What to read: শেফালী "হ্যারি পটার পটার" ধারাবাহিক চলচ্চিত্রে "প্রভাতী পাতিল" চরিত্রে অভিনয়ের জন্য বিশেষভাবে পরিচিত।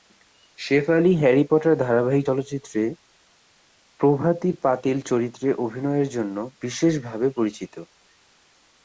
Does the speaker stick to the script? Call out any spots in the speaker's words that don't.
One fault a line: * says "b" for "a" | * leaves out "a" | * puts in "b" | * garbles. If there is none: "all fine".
* leaves out "পটার"